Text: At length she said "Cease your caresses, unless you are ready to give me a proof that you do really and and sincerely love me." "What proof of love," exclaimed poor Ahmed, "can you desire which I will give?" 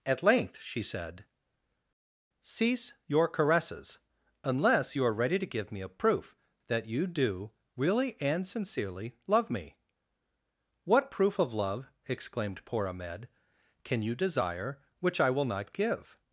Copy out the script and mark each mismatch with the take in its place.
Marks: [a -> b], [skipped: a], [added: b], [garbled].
At length she said "Cease your caresses, unless you are ready to give me a proof that you do really and [skipped: and] sincerely love me." "What proof of love," exclaimed poor Ahmed, "can you desire which I will [added: not] give?"